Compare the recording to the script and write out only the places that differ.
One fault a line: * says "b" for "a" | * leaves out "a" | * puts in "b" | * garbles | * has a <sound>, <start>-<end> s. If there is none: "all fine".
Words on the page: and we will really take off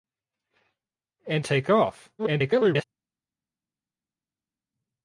* leaves out "we will really"
* garbles